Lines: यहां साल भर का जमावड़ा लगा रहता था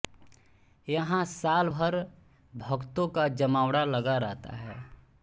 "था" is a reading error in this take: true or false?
true